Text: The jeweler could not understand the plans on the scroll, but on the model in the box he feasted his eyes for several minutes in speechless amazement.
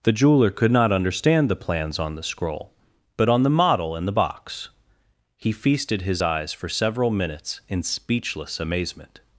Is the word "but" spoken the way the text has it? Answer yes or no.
yes